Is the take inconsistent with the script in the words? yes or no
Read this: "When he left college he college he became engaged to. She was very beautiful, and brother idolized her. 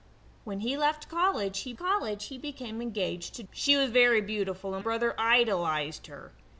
no